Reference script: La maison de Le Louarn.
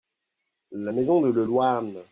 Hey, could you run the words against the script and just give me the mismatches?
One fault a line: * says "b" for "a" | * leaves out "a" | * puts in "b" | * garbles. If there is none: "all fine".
all fine